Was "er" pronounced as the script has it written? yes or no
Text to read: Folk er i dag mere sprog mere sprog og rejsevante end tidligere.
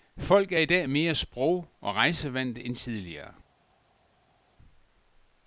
yes